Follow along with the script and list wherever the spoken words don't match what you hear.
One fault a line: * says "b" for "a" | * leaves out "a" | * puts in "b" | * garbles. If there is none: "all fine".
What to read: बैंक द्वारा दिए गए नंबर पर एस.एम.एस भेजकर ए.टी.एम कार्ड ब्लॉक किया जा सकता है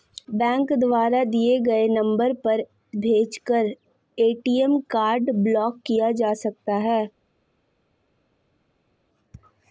* leaves out "एस.एम.एस"